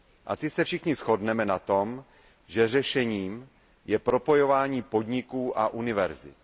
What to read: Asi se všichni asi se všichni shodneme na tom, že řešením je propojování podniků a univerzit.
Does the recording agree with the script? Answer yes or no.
no